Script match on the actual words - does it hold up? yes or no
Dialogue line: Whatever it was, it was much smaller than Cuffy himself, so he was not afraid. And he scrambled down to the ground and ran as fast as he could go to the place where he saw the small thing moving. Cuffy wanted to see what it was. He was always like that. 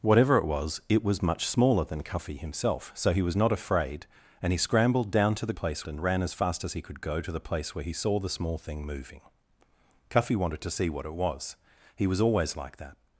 no